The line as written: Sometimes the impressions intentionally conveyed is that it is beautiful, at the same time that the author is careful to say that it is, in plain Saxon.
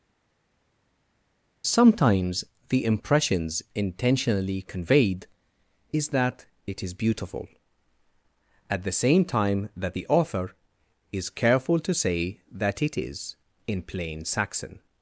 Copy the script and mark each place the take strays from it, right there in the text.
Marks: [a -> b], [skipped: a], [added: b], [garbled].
Sometimes the impressions intentionally conveyed is that it is beautiful, at the same time that the author is careful to say that it is, in plain Saxon.